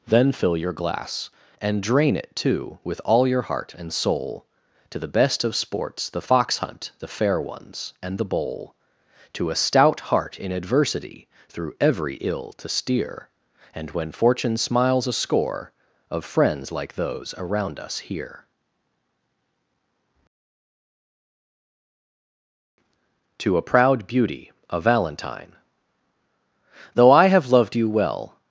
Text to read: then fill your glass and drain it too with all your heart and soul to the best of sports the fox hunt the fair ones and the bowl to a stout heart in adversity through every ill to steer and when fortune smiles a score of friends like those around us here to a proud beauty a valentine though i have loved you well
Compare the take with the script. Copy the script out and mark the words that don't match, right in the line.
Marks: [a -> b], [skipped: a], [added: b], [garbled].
then fill your glass and drain it too with all your heart and soul to the best of sports the fox hunt the fair ones and the bowl to a stout heart in adversity through every ill to steer and when fortune smiles a score of friends like those around us here to a proud beauty a valentine though i have loved you well